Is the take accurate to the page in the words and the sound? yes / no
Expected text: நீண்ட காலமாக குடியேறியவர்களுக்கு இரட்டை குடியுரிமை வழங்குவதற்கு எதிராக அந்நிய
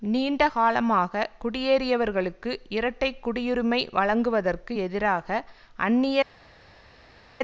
yes